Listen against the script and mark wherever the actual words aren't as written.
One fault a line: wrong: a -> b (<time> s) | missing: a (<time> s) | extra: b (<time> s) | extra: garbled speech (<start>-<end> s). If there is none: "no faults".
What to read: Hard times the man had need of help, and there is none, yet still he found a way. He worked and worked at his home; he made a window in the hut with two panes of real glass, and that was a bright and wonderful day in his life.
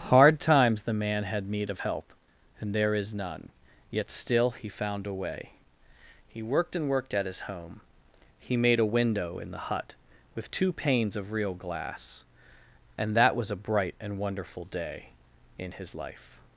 no faults